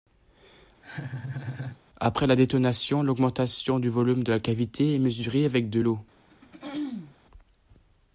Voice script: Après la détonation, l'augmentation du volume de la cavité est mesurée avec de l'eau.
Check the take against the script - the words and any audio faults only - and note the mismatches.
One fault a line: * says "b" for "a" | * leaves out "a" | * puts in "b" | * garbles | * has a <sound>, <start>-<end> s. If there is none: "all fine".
* has a laugh, 0.8-1.8 s
* has a throat clearing, 6.3-7.1 s